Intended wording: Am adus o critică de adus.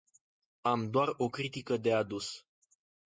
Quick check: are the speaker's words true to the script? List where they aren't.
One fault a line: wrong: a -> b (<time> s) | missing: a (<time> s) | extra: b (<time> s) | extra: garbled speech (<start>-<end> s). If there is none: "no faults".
wrong: adus -> doar (0.9 s)